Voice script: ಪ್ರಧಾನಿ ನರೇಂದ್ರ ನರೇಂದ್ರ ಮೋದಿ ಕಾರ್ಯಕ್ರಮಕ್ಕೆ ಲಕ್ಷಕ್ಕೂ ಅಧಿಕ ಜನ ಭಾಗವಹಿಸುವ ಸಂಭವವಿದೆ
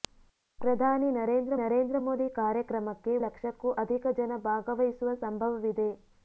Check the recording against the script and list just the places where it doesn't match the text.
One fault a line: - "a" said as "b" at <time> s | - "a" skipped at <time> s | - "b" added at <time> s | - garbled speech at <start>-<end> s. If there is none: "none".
none